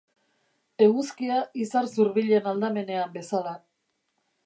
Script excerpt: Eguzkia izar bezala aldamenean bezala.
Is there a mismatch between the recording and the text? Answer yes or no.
yes